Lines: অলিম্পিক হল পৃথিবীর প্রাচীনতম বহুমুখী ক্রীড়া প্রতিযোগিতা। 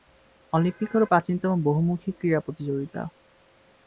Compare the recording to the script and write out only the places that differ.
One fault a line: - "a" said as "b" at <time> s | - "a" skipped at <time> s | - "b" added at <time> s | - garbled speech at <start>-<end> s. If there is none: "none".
- "পৃথিবীর" skipped at 1.0 s